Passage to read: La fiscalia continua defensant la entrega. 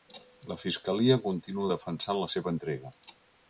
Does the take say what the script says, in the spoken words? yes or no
no